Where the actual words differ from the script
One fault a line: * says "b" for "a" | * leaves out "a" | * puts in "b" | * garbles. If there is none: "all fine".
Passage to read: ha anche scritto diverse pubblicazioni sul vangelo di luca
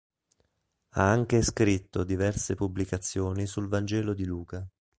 all fine